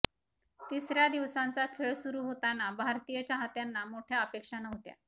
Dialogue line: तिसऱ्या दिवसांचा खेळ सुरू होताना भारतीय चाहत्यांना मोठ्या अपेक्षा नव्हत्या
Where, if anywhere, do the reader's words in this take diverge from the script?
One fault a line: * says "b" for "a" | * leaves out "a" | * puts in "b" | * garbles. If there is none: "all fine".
all fine